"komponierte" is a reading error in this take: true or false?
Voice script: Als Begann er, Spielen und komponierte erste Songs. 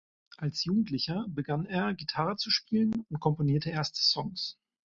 false